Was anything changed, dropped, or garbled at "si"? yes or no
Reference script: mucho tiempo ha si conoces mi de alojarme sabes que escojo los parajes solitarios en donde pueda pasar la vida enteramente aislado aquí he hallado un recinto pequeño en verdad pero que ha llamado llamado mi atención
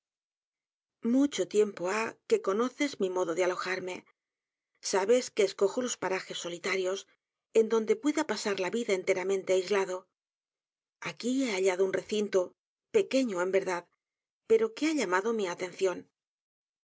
yes